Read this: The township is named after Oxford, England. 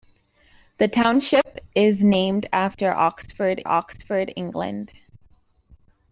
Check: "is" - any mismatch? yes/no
no